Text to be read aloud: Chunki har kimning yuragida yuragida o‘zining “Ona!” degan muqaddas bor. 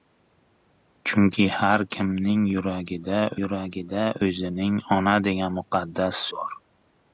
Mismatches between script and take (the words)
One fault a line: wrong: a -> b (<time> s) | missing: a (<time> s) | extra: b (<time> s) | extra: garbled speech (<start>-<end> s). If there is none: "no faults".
no faults